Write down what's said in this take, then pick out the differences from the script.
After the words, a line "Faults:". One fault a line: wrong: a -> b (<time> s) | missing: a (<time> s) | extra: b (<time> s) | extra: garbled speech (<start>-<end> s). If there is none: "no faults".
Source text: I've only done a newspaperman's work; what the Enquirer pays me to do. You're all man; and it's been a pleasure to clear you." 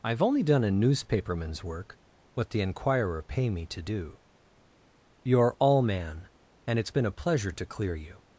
I've only done a newspaperman's work; what the Enquirer pay me to do. You're all man; and it's been a pleasure to clear you."
Faults:
wrong: pays -> pay (3.2 s)